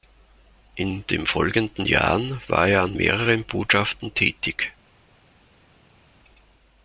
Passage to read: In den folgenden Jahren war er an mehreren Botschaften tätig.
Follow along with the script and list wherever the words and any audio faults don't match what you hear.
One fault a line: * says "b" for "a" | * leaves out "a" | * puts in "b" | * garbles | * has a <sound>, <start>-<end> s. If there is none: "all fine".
all fine